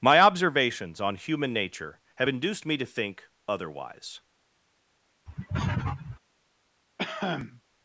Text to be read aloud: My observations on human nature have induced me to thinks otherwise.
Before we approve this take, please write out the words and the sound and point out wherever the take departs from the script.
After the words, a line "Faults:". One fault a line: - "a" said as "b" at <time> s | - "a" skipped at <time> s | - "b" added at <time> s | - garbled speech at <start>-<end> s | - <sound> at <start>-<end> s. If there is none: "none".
My observations on human nature have induced me to think otherwise.
Faults:
- "thinks" said as "think" at 2.8 s
- sniff at 5.3-6.2 s
- cough at 7.0-7.6 s